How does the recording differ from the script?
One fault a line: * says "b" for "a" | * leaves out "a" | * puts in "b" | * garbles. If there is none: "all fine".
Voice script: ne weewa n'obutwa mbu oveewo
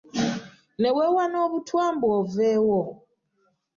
all fine